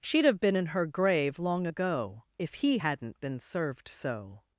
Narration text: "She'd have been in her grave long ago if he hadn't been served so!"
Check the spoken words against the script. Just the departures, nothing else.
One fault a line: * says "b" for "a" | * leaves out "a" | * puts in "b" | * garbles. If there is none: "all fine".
all fine